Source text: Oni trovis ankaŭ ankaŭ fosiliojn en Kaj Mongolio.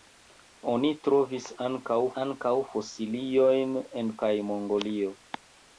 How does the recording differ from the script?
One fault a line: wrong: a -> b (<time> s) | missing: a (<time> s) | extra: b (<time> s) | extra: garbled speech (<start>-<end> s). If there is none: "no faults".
no faults